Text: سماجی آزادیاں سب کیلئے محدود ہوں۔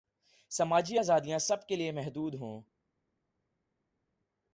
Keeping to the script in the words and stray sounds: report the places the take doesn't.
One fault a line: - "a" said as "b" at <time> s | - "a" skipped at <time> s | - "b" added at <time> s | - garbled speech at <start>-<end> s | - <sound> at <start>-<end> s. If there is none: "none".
none